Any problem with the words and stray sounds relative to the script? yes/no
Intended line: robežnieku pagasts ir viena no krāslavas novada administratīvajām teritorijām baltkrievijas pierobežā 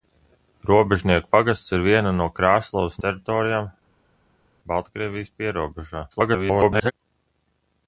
yes